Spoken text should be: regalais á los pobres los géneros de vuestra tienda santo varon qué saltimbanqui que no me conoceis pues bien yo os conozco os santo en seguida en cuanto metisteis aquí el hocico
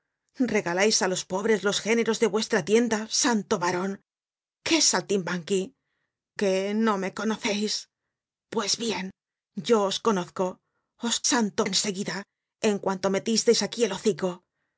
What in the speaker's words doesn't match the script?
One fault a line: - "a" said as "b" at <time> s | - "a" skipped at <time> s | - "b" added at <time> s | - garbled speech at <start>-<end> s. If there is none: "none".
none